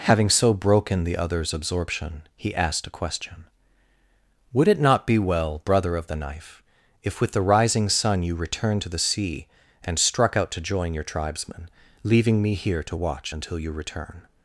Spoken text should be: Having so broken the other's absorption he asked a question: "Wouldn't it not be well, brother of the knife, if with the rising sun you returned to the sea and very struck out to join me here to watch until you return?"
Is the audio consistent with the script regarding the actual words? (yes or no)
no